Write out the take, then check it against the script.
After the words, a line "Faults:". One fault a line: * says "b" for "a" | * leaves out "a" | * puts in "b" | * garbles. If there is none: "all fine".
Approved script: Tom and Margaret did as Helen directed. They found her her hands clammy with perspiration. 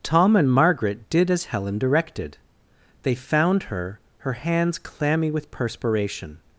Tom and Margaret did as Helen directed. They found her her hands clammy with perspiration.
Faults:
all fine